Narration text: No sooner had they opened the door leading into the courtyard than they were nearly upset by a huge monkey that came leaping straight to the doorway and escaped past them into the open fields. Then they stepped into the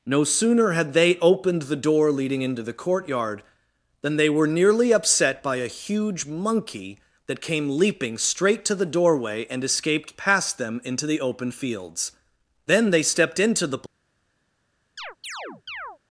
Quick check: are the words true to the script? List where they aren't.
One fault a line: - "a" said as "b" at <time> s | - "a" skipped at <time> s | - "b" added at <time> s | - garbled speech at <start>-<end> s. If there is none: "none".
none